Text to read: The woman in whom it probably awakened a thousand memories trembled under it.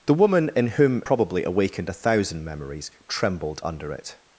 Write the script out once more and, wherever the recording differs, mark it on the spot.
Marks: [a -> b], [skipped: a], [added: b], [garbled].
The woman in whom [skipped: it] probably awakened a thousand memories trembled under it.